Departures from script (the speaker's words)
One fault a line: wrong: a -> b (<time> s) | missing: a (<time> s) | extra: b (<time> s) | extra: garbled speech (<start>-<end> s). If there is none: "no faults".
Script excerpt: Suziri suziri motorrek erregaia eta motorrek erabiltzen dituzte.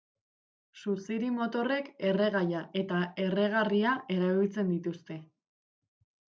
missing: suziri (1.3 s)
wrong: motorrek -> erregarria (3.3 s)